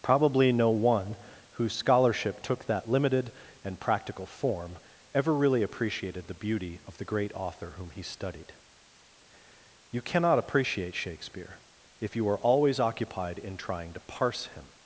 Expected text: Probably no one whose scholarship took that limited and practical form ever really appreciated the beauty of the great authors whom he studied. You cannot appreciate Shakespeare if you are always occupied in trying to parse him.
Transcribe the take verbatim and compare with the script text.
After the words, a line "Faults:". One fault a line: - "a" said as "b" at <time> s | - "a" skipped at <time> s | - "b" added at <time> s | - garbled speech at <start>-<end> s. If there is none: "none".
Probably no one whose scholarship took that limited and practical form ever really appreciated the beauty of the great author whom he studied. You cannot appreciate Shakespeare if you are always occupied in trying to parse him.
Faults:
- "authors" said as "author" at 7.3 s